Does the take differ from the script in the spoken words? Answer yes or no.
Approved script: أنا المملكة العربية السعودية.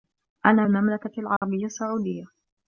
no